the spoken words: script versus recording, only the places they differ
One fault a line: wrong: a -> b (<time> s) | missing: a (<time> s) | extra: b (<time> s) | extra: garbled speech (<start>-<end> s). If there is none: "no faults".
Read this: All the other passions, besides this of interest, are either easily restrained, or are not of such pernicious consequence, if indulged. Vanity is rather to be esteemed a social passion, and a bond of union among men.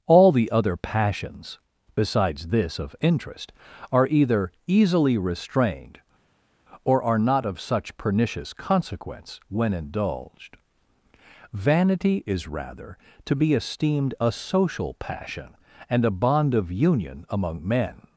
wrong: if -> when (9.5 s)